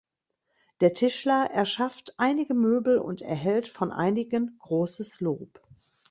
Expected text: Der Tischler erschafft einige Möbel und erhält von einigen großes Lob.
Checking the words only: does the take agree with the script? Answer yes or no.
yes